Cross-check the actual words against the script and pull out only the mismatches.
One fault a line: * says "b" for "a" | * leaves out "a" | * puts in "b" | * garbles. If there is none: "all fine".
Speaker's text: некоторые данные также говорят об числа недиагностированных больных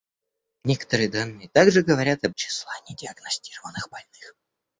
all fine